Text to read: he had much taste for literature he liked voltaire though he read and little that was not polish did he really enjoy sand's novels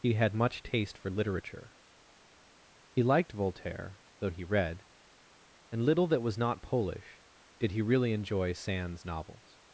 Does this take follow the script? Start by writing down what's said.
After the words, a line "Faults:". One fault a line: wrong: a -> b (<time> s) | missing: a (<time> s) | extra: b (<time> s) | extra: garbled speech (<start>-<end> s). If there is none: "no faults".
he had much taste for literature he liked voltaire though he read and little that was not polish did he really enjoy sand's novels
Faults:
no faults